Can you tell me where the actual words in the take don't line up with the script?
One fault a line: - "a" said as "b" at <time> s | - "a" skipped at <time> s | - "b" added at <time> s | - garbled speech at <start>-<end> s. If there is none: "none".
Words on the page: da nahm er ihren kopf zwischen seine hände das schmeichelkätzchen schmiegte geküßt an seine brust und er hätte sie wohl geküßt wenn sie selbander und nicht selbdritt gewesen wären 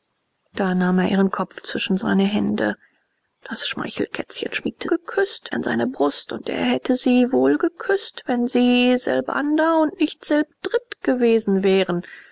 none